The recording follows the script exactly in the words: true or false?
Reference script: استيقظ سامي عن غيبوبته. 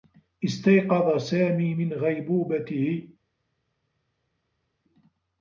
false